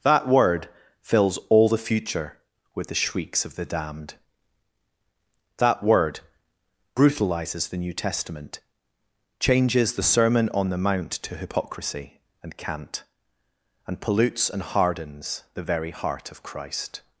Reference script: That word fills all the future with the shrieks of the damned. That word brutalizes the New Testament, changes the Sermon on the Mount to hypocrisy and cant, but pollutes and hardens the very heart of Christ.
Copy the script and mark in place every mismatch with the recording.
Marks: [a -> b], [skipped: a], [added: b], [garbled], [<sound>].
That word fills all the future with the shrieks of the damned. That word brutalizes the New Testament, changes the Sermon on the Mount to hypocrisy and cant, [but -> and] pollutes and hardens the very heart of Christ.